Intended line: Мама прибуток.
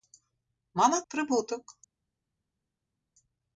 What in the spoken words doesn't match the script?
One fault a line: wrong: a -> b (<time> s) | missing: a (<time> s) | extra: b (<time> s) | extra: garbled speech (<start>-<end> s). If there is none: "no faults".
no faults